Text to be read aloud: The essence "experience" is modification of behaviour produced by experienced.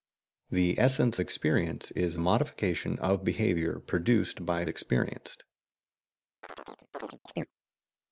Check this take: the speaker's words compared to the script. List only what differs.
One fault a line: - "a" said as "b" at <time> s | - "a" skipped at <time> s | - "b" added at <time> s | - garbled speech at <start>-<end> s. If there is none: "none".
none